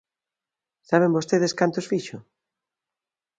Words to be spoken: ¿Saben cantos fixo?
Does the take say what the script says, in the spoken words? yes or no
no